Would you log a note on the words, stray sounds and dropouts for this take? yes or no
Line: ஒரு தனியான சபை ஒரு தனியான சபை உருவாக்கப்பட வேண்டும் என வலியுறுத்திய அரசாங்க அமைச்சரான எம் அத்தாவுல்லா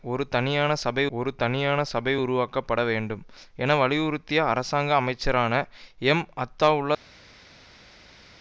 no